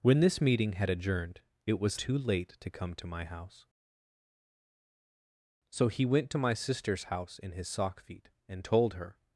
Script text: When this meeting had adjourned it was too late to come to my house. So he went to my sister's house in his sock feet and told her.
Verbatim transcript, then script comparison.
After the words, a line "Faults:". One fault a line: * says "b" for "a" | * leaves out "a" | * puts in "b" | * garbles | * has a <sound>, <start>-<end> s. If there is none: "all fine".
When this meeting had adjourned it was too late to come to my house. So he went to my sister's house in his sock feet and told her.
Faults:
all fine